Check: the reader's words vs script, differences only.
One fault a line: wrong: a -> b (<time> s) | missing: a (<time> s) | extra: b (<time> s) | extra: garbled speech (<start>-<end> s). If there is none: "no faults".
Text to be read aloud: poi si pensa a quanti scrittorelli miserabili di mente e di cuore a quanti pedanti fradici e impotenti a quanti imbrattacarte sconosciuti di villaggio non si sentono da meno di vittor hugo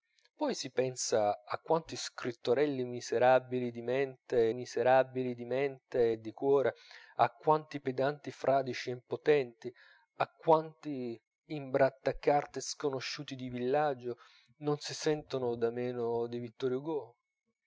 extra: miserabili di mente (4.5 s)